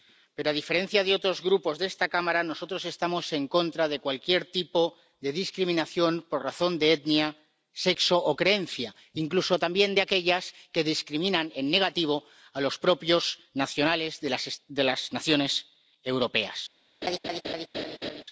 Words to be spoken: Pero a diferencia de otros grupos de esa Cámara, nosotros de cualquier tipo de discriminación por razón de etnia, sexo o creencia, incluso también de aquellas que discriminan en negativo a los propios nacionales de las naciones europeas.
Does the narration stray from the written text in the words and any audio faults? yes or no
yes